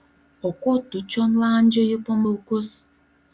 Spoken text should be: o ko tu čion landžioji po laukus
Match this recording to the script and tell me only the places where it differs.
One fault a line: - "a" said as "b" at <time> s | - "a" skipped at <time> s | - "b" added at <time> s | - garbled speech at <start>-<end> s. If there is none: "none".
none